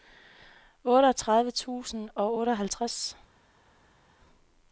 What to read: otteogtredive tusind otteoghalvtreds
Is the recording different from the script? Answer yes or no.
yes